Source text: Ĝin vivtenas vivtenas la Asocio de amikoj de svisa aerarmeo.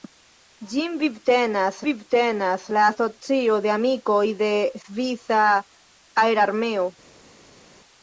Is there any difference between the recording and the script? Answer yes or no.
no